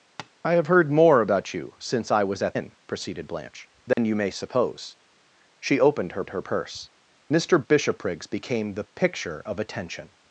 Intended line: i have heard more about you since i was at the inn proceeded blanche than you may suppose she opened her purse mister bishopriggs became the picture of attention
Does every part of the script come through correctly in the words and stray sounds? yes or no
no